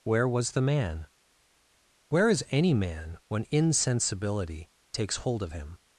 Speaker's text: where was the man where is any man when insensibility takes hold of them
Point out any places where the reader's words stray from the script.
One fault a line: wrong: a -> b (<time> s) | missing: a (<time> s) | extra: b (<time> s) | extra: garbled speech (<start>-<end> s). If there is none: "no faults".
wrong: them -> him (5.5 s)